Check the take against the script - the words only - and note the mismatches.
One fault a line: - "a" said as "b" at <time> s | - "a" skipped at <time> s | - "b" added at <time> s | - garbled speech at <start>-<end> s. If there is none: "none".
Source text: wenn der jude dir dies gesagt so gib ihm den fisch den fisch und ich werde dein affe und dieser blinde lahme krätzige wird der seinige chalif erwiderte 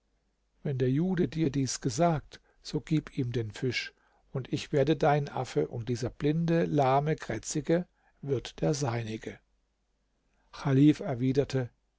- "den fisch" skipped at 3.9 s